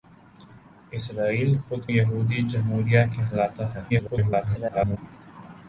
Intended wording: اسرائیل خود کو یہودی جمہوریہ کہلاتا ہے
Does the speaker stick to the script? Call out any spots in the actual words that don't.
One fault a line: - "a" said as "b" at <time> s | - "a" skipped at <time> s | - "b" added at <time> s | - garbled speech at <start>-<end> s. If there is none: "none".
- "کو" skipped at 1.8 s
- garbled speech at 3.9-5.0 s